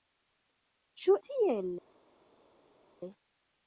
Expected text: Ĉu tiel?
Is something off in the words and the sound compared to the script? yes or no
no